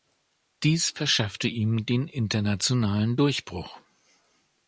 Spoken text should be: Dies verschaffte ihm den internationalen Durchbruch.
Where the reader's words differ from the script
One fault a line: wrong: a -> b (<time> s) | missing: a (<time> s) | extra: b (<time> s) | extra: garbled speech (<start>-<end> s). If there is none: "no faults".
no faults